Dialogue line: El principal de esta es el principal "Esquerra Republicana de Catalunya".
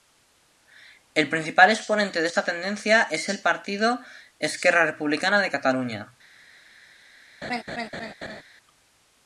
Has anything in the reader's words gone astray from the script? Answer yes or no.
yes